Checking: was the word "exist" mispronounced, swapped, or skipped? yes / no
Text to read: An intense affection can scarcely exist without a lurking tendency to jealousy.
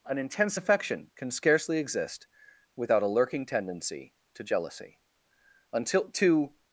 no